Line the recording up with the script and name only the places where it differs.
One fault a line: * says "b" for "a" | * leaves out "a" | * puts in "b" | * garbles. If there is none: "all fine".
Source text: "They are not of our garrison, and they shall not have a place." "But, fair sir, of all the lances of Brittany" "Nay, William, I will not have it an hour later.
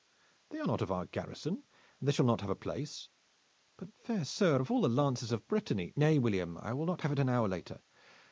all fine